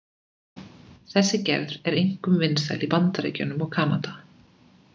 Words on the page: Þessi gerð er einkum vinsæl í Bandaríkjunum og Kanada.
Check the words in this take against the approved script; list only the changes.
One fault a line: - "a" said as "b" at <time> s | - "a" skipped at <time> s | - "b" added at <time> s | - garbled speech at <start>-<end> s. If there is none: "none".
none